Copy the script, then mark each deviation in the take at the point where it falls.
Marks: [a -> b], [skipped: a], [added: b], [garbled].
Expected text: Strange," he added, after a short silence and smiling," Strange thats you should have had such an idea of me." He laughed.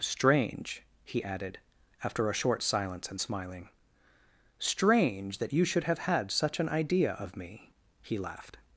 Strange," he added, after a short silence and smiling," Strange [thats -> that] you should have had such an idea of me." He laughed.